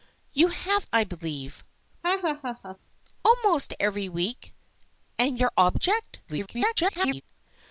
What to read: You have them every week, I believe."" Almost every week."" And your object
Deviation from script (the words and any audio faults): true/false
true